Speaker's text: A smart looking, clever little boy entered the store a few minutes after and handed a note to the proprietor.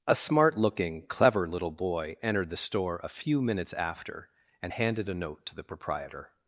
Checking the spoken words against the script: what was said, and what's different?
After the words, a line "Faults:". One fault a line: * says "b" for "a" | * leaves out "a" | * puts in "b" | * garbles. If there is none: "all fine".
A smart looking, clever little boy entered the store a few minutes after and handed a note to the proprietor.
Faults:
all fine